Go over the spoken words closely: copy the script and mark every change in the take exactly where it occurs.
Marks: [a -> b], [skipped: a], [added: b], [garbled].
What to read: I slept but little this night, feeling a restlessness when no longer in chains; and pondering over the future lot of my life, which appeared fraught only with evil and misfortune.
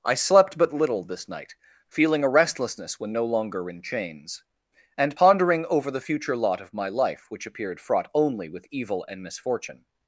I slept but little this night, feeling a restlessness when no longer in chains; and pondering over the future lot of my life, which appeared fraught only with evil and misfortune.